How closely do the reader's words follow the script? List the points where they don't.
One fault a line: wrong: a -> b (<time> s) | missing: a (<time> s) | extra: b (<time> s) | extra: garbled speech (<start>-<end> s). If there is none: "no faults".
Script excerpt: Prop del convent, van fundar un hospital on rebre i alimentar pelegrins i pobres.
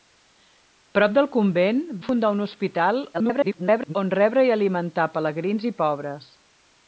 missing: van (1.8 s)
extra: garbled speech (3.1-3.9 s)